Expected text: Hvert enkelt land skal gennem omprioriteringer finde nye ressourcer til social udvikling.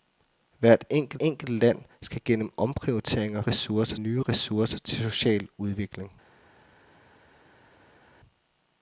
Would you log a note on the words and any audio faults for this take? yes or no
yes